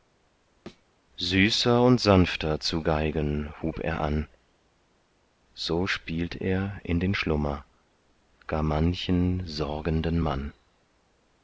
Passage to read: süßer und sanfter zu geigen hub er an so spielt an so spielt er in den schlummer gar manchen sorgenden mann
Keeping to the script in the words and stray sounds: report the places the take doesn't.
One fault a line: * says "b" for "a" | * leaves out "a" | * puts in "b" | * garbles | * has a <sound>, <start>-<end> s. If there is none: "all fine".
* has a thud, 0.7-0.9 s
* leaves out "an so spielt"